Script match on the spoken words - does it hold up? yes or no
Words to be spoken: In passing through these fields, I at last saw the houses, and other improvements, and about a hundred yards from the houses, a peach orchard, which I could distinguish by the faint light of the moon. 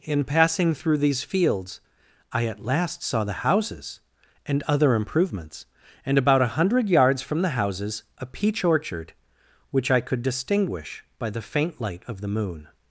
yes